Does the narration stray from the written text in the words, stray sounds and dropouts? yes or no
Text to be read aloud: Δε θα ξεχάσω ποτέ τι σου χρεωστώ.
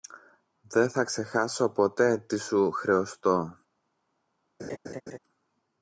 yes